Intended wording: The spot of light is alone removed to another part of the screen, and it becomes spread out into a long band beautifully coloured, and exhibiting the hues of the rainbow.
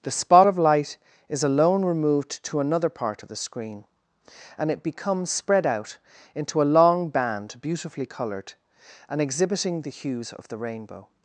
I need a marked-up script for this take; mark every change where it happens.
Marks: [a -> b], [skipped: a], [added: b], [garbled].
The spot of light is alone removed to another part of the screen, and it becomes spread out into a long band beautifully coloured, and exhibiting the hues of the rainbow.